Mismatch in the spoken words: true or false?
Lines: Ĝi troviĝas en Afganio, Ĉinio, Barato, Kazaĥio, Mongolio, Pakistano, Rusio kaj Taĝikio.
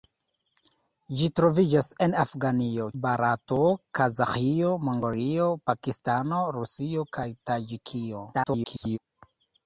true